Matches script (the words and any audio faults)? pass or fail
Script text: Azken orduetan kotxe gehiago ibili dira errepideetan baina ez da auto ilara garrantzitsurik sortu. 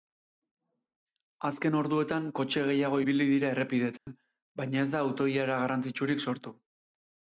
fail